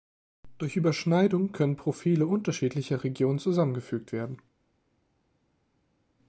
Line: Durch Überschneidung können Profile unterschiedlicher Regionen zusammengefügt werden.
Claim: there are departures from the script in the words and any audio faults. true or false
false